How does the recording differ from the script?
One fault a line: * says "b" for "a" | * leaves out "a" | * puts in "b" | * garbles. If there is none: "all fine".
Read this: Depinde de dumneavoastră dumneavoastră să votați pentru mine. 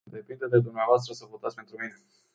* leaves out "dumneavoastră"